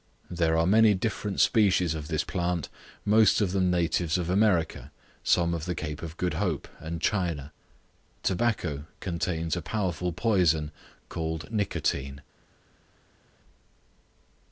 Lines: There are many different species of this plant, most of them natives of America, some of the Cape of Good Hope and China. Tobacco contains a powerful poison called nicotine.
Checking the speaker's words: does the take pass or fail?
pass